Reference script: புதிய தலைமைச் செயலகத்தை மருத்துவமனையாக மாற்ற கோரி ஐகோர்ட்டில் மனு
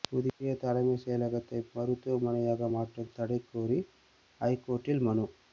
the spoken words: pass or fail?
fail